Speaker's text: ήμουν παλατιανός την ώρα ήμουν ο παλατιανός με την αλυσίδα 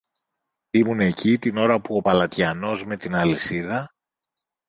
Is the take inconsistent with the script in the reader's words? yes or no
yes